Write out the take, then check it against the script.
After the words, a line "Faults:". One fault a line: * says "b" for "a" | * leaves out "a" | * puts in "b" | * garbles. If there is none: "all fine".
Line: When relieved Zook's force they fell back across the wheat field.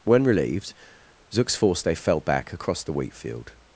When relieved Zook's force they fell back across the wheat field.
Faults:
all fine